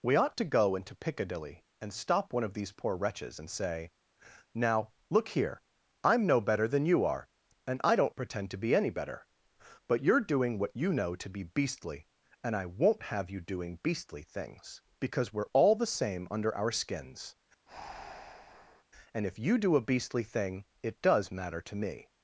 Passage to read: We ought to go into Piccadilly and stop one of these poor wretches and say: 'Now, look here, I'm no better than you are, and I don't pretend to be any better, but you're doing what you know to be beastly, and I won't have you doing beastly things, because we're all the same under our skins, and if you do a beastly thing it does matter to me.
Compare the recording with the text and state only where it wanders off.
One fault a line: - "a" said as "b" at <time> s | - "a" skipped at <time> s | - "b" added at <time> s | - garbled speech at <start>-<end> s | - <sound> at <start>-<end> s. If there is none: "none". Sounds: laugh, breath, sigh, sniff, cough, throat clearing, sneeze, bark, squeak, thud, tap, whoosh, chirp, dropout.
- breath at 17.7-18.8 s